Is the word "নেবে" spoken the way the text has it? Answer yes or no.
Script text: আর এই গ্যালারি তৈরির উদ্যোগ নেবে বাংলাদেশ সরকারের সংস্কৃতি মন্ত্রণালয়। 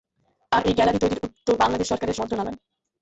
no